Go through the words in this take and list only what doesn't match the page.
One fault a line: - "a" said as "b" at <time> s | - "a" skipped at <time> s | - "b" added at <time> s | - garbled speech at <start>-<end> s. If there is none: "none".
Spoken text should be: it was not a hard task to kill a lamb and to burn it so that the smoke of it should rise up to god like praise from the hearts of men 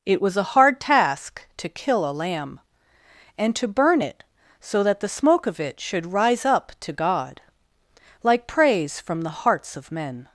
- "not" skipped at 0.4 s